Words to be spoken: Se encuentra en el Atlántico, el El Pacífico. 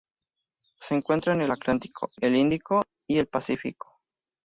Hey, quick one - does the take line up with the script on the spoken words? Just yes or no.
no